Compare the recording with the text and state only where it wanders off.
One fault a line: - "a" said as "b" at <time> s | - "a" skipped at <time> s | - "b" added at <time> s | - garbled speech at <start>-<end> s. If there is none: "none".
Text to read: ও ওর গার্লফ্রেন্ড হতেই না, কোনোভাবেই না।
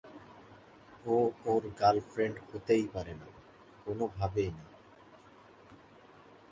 - "পারে" added at 2.9 s